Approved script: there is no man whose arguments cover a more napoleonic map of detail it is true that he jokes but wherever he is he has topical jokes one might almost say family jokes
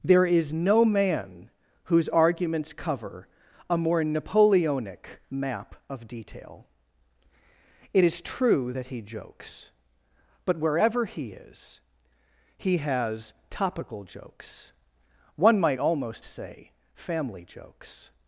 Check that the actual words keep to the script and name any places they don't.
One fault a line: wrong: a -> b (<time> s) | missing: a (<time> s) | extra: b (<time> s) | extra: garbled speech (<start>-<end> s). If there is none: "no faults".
no faults